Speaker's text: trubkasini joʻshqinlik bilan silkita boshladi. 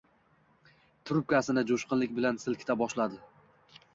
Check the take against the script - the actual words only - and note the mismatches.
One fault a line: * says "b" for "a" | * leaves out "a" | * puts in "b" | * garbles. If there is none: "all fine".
all fine